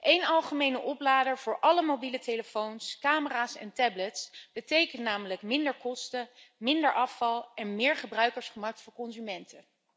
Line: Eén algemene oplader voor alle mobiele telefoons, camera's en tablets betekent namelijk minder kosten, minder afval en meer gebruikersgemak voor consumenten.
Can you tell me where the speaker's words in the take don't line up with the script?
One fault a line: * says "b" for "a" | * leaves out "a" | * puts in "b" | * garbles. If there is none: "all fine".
all fine